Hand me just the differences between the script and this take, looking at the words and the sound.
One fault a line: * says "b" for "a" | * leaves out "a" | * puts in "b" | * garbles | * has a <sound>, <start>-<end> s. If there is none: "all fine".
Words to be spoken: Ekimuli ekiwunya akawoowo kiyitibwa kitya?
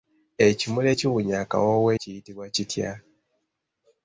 all fine